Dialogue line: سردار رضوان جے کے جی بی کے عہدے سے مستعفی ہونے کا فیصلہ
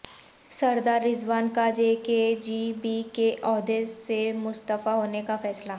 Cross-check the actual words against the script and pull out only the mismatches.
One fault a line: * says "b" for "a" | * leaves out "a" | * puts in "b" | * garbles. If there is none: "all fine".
* puts in "کا"